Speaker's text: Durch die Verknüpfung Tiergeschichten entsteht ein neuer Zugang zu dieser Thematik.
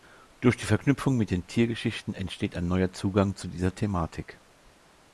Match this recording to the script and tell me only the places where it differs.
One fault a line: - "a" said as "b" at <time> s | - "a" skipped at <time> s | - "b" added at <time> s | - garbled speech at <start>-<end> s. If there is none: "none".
- "mit den" added at 1.1 s